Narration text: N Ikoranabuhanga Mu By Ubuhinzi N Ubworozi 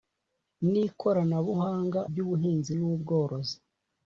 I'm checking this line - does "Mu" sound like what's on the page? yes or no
no